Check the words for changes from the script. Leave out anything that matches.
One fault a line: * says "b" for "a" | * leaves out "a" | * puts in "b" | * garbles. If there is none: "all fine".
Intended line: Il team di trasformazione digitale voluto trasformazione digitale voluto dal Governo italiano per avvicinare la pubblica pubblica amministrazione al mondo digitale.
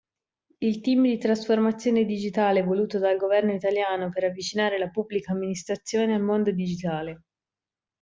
* leaves out "trasformazione digitale voluto"
* leaves out "pubblica"